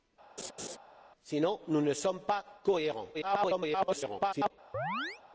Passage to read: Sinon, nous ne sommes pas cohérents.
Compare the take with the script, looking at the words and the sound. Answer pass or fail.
fail